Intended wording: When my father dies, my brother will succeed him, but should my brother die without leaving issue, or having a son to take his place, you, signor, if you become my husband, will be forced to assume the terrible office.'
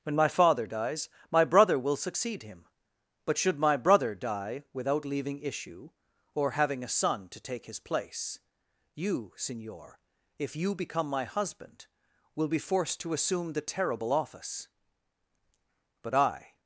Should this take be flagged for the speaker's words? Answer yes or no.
yes